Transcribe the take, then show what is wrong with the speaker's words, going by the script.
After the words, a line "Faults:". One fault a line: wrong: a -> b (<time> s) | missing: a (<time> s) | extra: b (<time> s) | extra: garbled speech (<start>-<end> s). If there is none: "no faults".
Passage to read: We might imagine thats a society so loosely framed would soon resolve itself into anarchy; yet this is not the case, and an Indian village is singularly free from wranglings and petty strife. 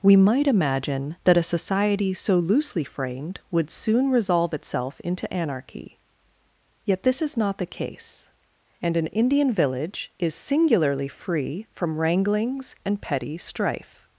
We might imagine that a society so loosely framed would soon resolve itself into anarchy; yet this is not the case, and an Indian village is singularly free from wranglings and petty strife.
Faults:
wrong: thats -> that (1.2 s)